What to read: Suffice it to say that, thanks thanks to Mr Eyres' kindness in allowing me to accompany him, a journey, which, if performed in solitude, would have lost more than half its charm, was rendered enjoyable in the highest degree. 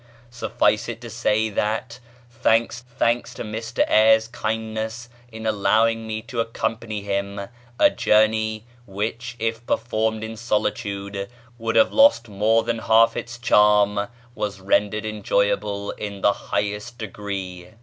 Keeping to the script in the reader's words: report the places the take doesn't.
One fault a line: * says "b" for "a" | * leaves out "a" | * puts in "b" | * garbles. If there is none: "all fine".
all fine